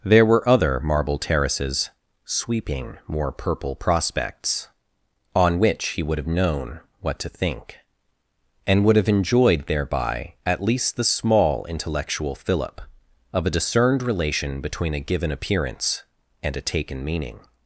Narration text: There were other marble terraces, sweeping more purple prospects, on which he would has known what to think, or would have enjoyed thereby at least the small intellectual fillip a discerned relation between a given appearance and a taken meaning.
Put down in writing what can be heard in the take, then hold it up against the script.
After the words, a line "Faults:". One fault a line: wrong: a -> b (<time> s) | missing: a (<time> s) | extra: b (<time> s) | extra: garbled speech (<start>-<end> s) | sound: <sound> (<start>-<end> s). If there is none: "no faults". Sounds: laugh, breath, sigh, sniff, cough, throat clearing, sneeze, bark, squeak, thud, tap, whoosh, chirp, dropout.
There were other marble terraces, sweeping more purple prospects, on which he would have known what to think, and would have enjoyed thereby at least the small intellectual fillip of a discerned relation between a given appearance and a taken meaning.
Faults:
wrong: has -> have (6.2 s)
wrong: or -> and (8.7 s)
extra: of (13.3 s)